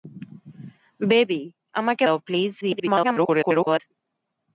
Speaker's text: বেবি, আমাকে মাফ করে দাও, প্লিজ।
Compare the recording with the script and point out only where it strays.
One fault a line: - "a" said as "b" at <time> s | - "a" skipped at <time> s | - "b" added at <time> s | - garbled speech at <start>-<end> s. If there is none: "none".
- "মাফ করে" skipped at 2.0 s
- garbled speech at 2.6-3.8 s